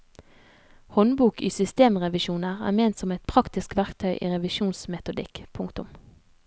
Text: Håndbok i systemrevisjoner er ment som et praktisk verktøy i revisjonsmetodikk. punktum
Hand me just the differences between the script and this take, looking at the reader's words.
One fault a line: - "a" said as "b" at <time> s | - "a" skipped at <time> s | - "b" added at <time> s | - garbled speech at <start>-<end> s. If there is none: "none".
none